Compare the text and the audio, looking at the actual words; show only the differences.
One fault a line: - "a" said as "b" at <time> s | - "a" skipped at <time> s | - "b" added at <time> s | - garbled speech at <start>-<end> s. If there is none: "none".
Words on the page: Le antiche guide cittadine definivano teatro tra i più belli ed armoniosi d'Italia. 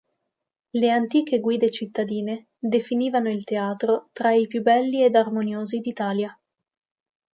- "il" added at 3.3 s